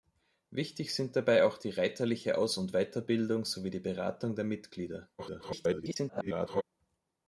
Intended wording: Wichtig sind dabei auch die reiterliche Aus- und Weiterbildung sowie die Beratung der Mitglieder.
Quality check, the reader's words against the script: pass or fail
fail